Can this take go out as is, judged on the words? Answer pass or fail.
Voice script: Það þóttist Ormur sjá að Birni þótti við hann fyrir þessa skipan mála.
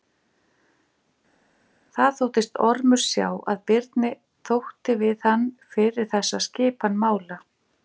pass